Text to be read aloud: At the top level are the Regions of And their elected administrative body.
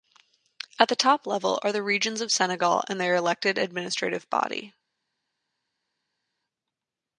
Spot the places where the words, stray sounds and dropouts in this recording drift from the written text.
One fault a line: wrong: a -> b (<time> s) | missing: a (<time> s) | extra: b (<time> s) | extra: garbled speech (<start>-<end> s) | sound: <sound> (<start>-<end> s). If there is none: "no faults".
extra: Senegal (2.3 s)